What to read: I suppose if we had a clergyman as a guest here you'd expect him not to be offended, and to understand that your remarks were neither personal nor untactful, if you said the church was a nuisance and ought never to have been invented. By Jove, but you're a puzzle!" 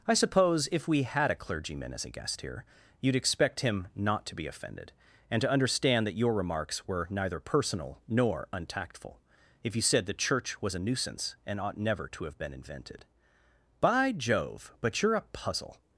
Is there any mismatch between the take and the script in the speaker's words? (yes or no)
no